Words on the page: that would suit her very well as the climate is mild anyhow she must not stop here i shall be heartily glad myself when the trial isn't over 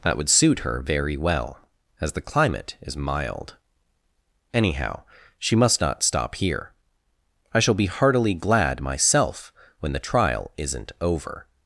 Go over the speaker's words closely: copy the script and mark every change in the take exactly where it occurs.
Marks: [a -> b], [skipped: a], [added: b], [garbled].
that would suit her very well as the climate is mild anyhow she must not stop here i shall be heartily glad myself when the trial isn't over